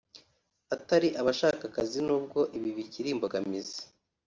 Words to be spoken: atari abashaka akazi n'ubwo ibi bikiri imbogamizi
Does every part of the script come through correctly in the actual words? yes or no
yes